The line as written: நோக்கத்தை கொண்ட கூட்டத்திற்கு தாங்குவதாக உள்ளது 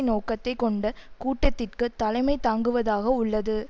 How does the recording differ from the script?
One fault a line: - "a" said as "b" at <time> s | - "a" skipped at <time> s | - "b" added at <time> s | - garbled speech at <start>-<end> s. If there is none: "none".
- "தலைமை" added at 2.0 s